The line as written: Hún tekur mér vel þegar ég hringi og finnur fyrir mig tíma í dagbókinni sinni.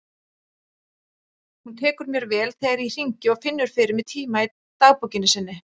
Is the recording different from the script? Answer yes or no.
no